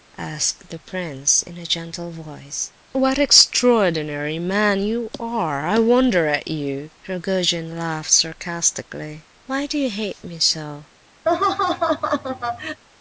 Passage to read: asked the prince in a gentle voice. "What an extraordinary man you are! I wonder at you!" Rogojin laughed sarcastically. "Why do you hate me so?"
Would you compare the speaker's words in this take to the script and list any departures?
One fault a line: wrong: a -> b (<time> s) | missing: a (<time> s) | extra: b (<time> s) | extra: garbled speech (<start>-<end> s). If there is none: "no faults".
no faults